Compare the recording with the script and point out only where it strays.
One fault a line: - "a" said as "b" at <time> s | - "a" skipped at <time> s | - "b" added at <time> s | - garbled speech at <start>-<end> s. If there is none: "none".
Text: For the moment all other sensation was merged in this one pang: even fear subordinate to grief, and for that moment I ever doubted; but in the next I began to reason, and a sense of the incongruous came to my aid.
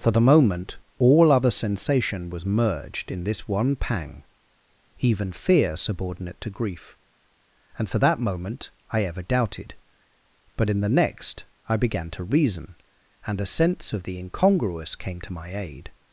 none